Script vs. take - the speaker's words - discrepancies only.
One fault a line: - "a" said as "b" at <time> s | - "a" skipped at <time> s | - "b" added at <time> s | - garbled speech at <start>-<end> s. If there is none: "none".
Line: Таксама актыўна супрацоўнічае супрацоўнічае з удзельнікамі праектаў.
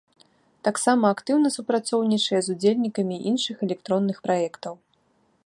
- "супрацоўнічае" skipped at 2.4 s
- "іншых электронных" added at 3.3 s